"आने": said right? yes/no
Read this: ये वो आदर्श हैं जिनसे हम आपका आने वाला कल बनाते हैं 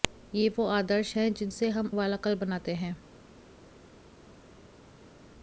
no